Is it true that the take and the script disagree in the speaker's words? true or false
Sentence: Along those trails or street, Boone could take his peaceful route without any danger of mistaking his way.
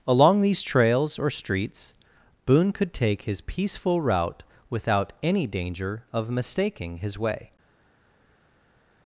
true